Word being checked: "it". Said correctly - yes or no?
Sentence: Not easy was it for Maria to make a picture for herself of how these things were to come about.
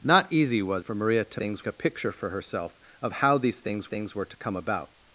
no